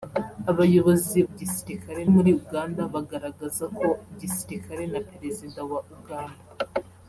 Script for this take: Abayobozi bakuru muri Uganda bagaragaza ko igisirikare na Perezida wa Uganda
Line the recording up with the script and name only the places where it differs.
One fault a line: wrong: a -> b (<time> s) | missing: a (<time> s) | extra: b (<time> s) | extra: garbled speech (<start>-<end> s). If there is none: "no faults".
wrong: bakuru -> igisirikare (1.3 s)